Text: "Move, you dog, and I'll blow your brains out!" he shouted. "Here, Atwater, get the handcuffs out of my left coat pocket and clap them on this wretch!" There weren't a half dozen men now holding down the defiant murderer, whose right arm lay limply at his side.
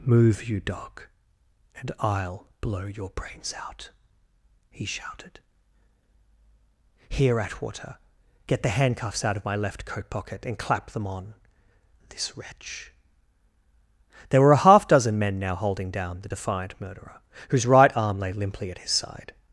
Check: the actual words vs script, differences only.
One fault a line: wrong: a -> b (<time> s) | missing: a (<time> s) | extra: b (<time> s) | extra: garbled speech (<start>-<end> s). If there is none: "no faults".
wrong: weren't -> were (14.4 s)